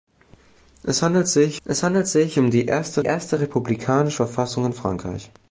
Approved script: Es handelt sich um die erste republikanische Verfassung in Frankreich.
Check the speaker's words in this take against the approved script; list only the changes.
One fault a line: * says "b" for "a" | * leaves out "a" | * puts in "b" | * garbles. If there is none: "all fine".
* puts in "es handelt sich"
* puts in "erste"